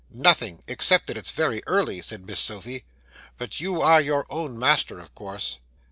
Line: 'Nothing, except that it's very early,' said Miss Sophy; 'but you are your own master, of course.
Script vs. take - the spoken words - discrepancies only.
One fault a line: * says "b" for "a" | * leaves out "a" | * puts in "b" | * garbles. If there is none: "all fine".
all fine